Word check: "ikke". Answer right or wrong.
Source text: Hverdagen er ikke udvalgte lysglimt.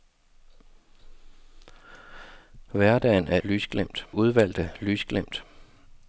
wrong